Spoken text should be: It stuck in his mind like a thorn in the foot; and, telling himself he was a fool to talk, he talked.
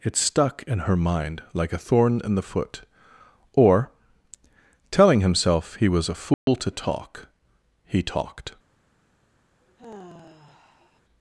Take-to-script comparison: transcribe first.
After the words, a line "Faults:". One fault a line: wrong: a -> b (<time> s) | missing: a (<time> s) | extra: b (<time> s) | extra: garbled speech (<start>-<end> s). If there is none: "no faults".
It stuck in her mind like a thorn in the foot; or, telling himself he was a fool to talk, he talked.
Faults:
wrong: his -> her (0.8 s)
wrong: and -> or (3.5 s)